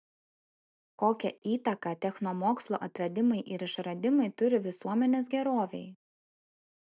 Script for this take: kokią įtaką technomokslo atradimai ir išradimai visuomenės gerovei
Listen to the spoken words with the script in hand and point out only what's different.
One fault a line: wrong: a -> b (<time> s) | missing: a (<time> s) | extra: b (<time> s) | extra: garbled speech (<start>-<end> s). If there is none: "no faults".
extra: turi (4.4 s)